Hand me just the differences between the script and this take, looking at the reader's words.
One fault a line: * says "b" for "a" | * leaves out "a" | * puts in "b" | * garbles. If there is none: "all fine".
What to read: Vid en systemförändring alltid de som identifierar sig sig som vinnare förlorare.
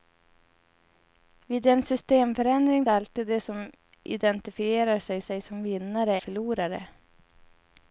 all fine